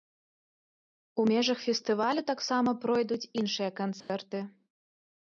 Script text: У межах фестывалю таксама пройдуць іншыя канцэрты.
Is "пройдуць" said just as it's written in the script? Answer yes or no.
yes